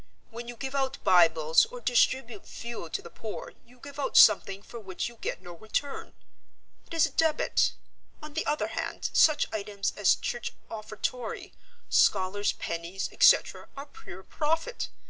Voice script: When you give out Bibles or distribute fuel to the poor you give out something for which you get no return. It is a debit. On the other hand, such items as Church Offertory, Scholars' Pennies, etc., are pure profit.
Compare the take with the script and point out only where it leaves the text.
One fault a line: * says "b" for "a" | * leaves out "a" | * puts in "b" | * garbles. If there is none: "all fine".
all fine